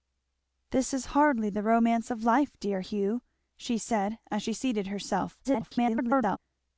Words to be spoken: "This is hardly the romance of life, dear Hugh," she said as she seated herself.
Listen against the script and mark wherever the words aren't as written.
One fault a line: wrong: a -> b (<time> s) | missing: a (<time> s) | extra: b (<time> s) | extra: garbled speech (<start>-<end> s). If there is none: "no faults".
extra: garbled speech (5.4-6.4 s)